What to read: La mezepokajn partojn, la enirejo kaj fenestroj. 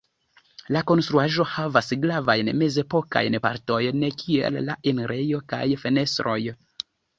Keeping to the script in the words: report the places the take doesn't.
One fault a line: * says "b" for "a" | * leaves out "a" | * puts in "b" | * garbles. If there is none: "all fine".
* puts in "konstruaĵo havas gravajn"
* puts in "kiel"